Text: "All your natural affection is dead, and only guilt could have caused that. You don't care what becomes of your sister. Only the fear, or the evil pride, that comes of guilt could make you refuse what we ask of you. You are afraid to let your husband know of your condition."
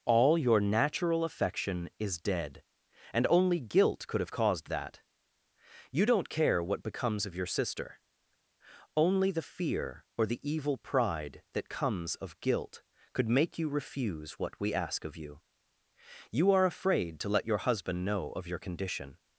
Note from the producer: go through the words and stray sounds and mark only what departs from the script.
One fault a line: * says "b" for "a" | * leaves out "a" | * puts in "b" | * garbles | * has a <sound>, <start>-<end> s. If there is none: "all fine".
all fine